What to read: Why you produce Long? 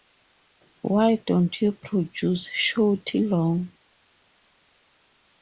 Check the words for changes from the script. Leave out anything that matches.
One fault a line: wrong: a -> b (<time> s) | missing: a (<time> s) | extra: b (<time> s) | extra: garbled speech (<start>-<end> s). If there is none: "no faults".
extra: don't (1.2 s)
extra: Shorty (2.5 s)